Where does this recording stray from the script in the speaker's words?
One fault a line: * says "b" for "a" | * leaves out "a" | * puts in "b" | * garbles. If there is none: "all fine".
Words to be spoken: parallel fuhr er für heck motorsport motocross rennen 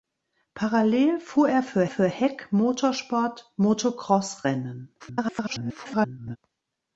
* puts in "für"
* garbles